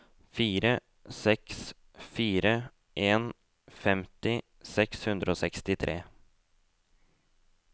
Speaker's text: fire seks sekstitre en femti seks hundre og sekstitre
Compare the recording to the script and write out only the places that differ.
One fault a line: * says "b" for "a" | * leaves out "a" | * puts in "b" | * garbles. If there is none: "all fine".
* says "fire" for "sekstitre"